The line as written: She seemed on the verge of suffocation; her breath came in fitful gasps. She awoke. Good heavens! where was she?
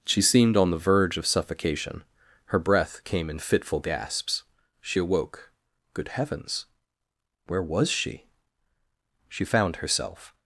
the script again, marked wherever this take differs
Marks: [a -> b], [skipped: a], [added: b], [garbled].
She seemed on the verge of suffocation; her breath came in fitful gasps. She awoke. Good heavens! where was she? [added: She found herself]